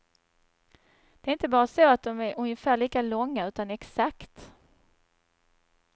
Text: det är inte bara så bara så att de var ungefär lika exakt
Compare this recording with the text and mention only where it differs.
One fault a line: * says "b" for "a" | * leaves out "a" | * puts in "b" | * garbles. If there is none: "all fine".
* leaves out "bara så"
* says "är" for "var"
* puts in "långa utan"